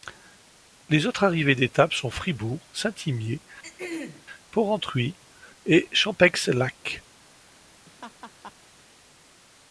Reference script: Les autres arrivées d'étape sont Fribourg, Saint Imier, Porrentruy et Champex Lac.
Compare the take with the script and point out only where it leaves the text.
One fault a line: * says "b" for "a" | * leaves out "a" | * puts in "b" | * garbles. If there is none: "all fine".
all fine